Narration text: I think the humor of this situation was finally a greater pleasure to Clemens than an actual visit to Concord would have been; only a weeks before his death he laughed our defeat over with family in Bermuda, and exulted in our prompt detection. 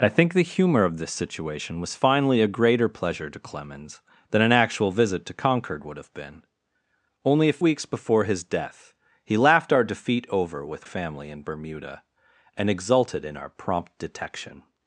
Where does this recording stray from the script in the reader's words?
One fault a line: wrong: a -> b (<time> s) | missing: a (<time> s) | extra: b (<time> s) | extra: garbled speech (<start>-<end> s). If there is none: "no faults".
no faults